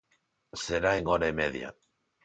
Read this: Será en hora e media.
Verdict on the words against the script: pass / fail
pass